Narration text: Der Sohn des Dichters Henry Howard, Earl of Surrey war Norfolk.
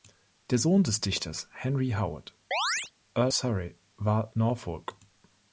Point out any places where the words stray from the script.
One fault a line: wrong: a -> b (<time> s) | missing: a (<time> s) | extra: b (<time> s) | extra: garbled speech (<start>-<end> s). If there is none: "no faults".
missing: of (3.3 s)